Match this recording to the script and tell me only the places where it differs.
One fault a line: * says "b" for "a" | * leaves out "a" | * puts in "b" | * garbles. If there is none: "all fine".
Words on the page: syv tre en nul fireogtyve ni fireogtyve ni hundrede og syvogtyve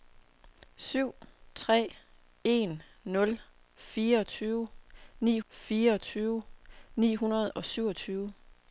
all fine